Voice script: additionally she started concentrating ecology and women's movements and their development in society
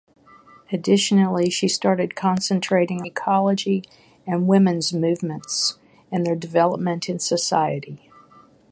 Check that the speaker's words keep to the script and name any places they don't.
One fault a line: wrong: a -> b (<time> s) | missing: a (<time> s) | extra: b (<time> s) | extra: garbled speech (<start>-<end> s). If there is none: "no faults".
no faults